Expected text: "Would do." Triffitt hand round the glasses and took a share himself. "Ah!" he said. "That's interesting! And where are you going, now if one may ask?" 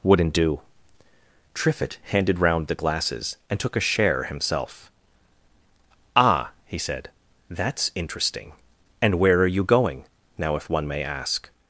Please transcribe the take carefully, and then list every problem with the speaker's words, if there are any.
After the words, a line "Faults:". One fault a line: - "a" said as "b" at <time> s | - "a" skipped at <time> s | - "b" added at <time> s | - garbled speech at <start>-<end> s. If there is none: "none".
"Wouldn't do." Triffitt handed round the glasses and took a share himself. "Ah!" he said. "That's interesting! And where are you going, now if one may ask?"
Faults:
- "Would" said as "Wouldn't" at 0.0 s
- "hand" said as "handed" at 2.0 s